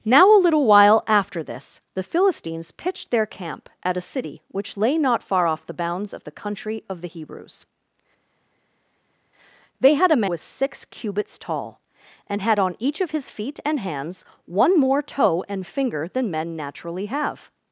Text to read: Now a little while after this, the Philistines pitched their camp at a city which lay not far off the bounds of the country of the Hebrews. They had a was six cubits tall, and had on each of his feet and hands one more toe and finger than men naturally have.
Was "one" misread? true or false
false